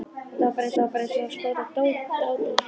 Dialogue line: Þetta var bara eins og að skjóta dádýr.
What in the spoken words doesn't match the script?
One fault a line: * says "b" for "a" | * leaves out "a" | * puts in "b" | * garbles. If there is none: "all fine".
* puts in "var bara eins"